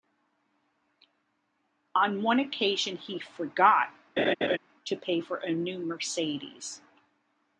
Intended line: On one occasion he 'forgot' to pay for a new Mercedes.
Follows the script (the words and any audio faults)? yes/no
no